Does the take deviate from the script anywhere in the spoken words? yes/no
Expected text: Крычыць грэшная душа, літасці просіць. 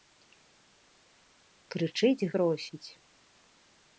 yes